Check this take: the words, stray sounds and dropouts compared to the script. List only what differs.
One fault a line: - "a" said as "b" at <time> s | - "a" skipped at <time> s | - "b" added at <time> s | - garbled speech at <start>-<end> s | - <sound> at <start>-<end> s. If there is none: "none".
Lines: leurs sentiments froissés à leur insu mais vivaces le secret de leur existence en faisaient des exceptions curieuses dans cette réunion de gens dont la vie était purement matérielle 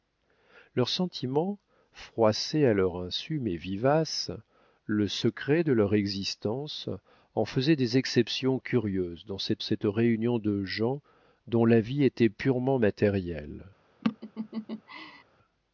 - "cette" added at 9.6 s
- laugh at 14.0-15.2 s